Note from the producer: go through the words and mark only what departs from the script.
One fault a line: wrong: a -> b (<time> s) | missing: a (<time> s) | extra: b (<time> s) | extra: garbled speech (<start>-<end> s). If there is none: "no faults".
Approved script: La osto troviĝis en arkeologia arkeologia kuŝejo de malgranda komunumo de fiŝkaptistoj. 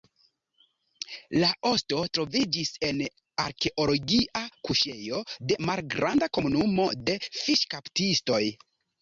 missing: arkeologia (4.4 s)